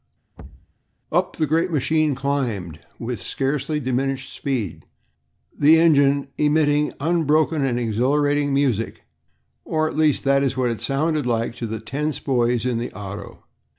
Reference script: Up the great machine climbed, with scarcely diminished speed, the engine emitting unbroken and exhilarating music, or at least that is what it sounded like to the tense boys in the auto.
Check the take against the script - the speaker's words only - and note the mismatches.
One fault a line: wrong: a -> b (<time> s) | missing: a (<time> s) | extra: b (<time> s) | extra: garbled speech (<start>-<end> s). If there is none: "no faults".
no faults